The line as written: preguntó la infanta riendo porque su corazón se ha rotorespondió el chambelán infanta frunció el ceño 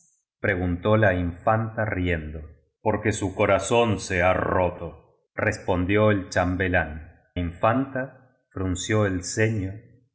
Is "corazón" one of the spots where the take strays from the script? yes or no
no